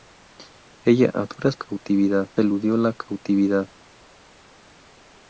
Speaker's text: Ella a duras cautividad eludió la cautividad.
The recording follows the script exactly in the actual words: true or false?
true